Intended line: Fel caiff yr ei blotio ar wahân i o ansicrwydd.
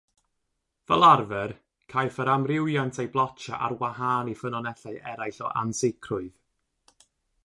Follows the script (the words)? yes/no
no